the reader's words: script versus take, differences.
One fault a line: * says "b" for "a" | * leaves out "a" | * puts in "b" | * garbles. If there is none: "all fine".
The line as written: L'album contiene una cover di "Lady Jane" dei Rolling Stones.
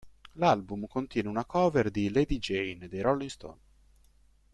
all fine